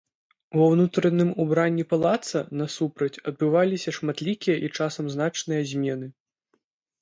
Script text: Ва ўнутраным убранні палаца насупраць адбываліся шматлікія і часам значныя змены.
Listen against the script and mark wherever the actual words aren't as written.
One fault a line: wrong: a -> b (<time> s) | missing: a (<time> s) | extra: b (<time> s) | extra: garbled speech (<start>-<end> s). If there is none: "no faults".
no faults